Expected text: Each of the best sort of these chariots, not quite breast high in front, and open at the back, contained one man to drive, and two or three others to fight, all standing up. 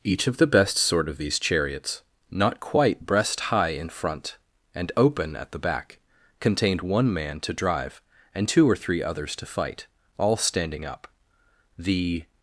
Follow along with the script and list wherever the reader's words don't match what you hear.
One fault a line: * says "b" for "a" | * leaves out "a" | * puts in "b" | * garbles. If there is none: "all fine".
* puts in "The"